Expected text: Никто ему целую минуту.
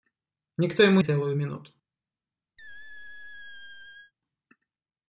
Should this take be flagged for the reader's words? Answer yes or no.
no